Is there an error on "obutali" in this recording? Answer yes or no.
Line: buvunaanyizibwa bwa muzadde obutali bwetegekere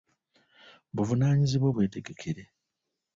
yes